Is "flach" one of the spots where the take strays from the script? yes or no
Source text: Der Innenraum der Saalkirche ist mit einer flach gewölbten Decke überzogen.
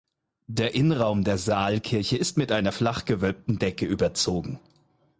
no